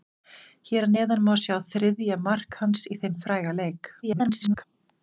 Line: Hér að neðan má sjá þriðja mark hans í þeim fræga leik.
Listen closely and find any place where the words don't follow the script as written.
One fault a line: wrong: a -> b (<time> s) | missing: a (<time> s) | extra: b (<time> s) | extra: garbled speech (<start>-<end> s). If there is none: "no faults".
extra: garbled speech (4.0-4.6 s)